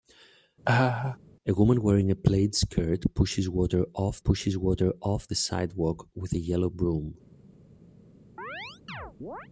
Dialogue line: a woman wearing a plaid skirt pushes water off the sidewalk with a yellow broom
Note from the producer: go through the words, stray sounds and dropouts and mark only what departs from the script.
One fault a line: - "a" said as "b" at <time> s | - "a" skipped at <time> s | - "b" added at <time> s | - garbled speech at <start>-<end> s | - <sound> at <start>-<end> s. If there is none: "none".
- laugh at 0.6-1.2 s
- "pushes water off" added at 4.2 s
- chirp at 8.4-9.5 s